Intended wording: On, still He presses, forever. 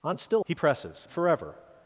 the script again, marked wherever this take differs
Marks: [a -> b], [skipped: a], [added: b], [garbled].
On, still He presses, forever.